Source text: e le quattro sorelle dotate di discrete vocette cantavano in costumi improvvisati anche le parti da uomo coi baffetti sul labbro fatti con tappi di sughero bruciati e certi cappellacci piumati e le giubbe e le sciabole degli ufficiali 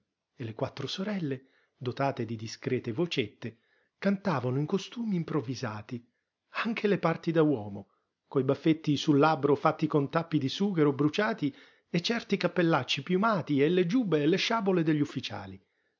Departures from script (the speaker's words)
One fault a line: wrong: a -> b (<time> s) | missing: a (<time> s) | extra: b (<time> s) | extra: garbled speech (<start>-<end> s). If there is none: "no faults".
no faults